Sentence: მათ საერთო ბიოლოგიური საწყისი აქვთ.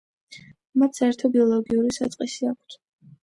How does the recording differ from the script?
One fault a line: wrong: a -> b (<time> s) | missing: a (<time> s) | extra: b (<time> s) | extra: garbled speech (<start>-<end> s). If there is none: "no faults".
no faults